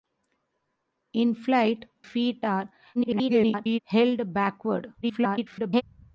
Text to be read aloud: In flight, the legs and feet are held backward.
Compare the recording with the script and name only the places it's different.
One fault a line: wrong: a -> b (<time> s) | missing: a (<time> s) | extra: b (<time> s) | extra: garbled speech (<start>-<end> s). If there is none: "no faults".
missing: the legs and (1.9 s)
extra: garbled speech (2.9-3.8 s)
extra: garbled speech (5.0-5.8 s)